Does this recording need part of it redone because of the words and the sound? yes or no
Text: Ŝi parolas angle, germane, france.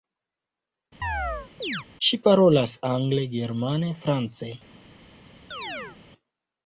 yes